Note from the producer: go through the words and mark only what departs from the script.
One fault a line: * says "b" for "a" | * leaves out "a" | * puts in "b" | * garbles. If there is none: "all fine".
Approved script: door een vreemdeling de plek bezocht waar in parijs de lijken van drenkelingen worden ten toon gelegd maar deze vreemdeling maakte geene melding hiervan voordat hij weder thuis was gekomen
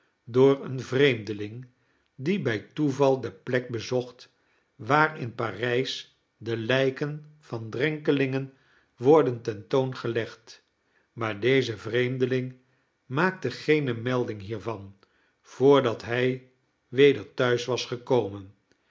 * puts in "die bij toeval"